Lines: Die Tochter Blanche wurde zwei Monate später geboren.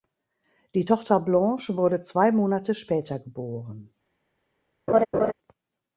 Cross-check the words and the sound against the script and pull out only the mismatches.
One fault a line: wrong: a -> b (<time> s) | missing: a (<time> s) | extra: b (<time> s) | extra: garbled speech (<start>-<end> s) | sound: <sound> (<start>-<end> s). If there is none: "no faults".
sound: laugh (4.9-5.3 s)